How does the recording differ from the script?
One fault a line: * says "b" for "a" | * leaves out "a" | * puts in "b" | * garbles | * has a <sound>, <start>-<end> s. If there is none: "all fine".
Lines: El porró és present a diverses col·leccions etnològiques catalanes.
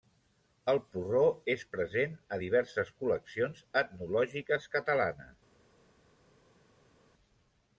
all fine